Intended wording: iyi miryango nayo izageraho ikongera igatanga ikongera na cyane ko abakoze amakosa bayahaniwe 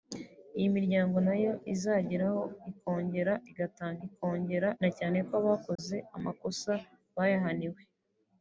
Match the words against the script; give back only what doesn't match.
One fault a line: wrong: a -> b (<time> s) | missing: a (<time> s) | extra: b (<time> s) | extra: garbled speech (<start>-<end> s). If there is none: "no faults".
no faults